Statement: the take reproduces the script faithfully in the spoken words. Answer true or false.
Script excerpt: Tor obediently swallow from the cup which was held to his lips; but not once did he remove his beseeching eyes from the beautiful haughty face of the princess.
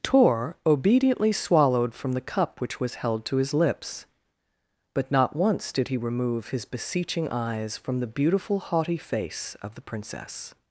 false